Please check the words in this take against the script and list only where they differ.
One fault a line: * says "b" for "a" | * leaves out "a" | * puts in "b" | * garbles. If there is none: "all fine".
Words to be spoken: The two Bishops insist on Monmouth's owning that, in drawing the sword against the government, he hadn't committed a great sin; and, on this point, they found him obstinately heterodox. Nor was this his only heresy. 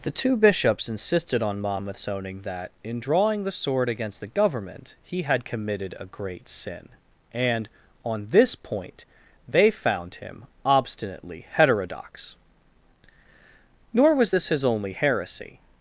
* says "insisted" for "insist"
* says "had" for "hadn't"